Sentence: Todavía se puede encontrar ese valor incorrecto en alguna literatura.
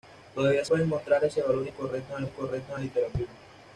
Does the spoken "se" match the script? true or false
false